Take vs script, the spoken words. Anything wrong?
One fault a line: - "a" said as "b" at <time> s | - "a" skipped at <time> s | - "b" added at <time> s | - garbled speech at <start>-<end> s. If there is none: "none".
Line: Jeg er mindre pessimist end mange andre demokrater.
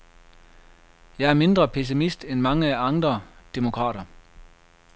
none